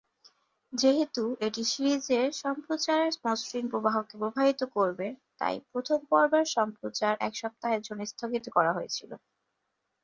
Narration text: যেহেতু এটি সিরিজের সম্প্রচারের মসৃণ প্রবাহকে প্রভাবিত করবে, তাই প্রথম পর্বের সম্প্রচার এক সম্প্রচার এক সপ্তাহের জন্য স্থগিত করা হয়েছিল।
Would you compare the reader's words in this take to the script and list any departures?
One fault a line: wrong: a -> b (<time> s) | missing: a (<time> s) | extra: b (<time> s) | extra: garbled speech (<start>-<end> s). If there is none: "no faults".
missing: সম্প্রচার এক (7.3 s)